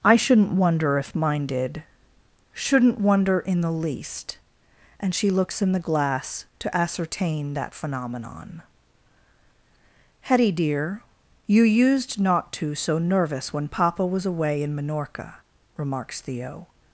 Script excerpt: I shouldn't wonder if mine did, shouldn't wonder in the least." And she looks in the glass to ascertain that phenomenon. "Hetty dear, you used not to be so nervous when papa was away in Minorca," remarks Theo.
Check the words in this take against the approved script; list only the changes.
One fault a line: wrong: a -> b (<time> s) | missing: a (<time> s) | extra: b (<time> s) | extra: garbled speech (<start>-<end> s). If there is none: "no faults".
missing: be (12.8 s)